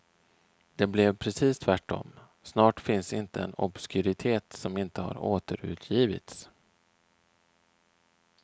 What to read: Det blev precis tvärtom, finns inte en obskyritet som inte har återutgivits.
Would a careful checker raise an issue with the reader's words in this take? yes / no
yes